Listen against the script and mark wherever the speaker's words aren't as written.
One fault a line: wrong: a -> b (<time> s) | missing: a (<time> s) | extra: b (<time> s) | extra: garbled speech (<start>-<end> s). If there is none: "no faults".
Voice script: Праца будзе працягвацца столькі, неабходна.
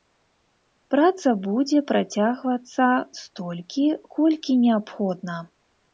extra: колькі (4.2 s)